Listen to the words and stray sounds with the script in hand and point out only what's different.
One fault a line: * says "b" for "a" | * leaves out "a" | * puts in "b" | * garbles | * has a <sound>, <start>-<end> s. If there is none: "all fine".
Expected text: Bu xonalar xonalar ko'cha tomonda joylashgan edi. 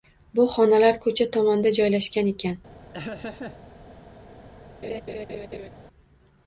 * leaves out "xonalar"
* says "ekan" for "edi"
* has a laugh, 2.9-3.6 s
* has a laugh, 4.8-5.7 s